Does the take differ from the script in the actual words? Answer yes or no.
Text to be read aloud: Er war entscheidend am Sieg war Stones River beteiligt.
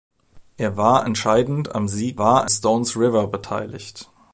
no